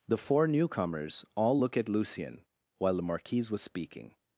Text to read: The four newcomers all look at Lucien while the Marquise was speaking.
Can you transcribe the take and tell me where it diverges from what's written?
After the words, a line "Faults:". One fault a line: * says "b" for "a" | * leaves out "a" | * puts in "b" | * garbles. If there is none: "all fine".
The four newcomers all look at Lucien while the Marquise was speaking.
Faults:
all fine